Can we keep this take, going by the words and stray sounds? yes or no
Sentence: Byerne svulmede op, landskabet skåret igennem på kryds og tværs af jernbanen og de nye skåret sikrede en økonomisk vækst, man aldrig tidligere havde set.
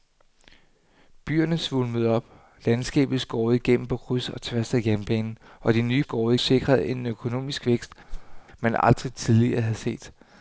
no